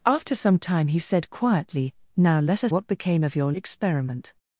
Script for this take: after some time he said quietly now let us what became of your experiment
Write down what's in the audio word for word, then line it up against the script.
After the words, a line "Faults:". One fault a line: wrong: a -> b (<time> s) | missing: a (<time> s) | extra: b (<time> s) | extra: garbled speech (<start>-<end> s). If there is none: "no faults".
after some time he said quietly now let us what became of your experiment
Faults:
no faults